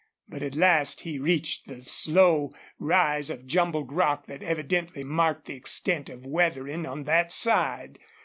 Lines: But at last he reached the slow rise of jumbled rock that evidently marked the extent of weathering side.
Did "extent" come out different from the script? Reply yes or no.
no